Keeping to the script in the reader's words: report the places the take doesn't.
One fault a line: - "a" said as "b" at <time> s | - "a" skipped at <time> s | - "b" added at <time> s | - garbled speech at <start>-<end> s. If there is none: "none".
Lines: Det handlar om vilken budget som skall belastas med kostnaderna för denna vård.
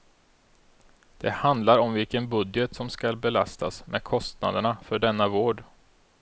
none